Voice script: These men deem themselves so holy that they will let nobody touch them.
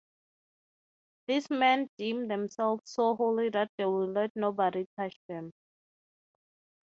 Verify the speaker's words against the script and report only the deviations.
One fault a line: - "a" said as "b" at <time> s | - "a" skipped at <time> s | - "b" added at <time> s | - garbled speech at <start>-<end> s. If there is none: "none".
none